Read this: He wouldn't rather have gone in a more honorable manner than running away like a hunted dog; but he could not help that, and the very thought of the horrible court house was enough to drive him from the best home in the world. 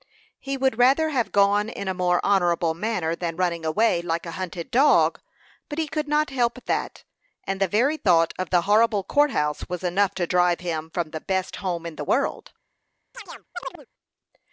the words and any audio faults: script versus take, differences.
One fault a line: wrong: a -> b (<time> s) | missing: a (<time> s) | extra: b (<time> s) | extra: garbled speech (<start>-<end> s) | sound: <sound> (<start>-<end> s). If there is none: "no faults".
wrong: wouldn't -> would (0.6 s)
sound: chirp (13.1-13.9 s)